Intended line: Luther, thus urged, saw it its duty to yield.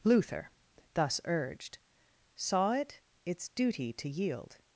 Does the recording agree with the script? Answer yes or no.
yes